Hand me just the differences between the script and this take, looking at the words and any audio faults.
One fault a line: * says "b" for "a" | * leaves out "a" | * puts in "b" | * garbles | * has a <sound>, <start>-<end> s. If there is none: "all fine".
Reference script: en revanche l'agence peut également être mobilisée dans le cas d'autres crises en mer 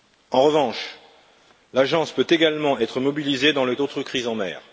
* leaves out "cas"